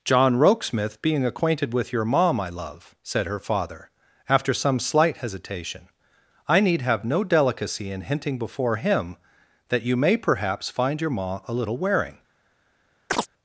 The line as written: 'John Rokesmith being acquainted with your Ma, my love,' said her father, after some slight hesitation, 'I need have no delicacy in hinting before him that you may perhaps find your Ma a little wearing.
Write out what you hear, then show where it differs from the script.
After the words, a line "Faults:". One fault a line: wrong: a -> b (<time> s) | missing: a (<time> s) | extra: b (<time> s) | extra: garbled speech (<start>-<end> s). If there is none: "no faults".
'John Rokesmith being acquainted with your Ma, my love,' said her father, after some slight hesitation, 'I need have no delicacy in hinting before him that you may perhaps find your Ma a little wearing.
Faults:
no faults